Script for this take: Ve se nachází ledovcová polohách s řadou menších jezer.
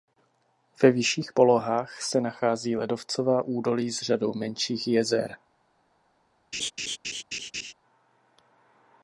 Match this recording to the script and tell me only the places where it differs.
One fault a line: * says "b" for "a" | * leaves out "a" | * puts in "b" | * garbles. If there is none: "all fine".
* puts in "vyšších polohách"
* says "údolí" for "polohách"